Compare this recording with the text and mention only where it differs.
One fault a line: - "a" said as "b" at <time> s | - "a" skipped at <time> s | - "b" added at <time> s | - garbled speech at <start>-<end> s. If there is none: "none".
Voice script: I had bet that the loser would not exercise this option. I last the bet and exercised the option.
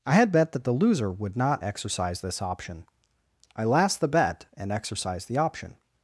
none